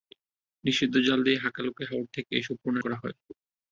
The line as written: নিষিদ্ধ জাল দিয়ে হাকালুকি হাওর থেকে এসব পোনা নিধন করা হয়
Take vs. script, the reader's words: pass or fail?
fail